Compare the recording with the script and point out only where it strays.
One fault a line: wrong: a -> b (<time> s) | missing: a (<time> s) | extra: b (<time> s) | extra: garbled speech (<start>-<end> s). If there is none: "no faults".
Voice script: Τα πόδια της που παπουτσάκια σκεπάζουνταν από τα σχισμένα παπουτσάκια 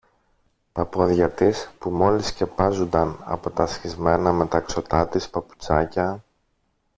wrong: παπουτσάκια -> μόλις (1.9 s)
extra: μεταξωτά της (4.3 s)